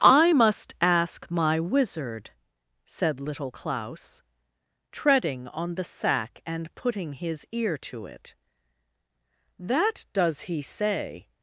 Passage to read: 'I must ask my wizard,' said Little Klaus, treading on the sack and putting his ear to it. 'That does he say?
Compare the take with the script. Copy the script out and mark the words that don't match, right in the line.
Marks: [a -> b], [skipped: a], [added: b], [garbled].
'I must ask my wizard,' said Little Klaus, treading on the sack and putting his ear to it. 'That does he say?